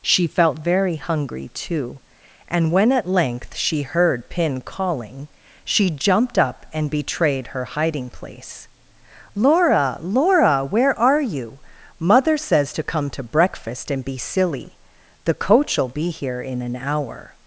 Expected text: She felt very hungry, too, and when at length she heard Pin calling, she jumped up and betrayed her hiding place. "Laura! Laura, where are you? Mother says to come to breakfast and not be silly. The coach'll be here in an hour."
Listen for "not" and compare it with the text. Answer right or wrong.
wrong